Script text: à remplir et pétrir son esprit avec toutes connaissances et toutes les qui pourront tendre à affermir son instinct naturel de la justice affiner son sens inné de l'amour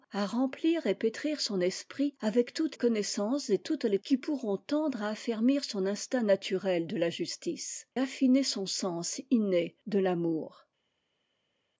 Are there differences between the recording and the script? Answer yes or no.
no